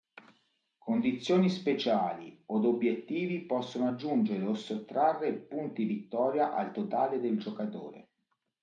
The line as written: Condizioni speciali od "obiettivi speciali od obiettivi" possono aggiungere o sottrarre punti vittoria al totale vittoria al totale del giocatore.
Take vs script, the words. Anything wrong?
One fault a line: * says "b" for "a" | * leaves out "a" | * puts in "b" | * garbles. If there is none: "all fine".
* leaves out "speciali od obiettivi"
* leaves out "vittoria al totale"